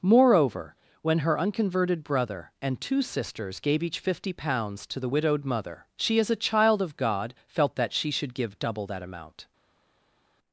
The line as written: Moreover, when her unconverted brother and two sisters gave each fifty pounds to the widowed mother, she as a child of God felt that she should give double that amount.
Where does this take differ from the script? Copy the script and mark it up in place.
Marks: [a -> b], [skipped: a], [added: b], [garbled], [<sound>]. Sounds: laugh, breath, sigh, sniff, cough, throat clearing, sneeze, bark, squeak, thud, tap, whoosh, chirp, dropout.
Moreover, when her unconverted brother and two sisters gave each fifty pounds to the widowed mother, she as a child of God felt that she should give double that amount.